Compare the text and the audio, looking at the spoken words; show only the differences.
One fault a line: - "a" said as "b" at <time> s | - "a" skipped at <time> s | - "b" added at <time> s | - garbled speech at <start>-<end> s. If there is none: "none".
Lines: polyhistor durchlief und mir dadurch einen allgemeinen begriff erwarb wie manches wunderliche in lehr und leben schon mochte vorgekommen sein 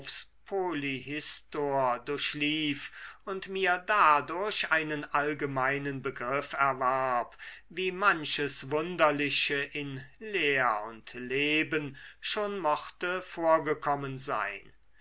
none